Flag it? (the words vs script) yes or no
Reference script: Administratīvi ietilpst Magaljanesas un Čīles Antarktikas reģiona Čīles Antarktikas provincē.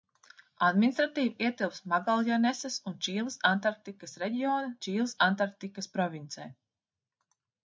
no